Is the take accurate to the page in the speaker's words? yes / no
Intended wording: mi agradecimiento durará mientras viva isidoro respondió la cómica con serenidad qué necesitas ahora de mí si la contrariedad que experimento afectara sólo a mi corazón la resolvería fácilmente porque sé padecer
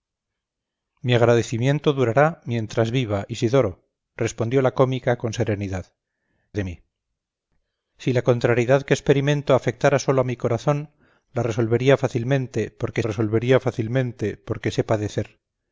no